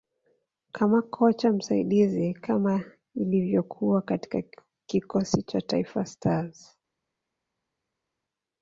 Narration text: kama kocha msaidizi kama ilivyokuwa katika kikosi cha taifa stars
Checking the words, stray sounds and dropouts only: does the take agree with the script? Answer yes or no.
yes